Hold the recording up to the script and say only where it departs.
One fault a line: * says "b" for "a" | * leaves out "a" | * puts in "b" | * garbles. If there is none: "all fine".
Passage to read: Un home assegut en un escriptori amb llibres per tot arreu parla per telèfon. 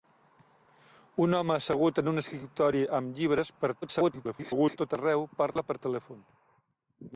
* garbles